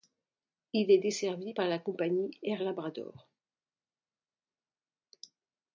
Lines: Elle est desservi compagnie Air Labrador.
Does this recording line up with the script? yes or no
no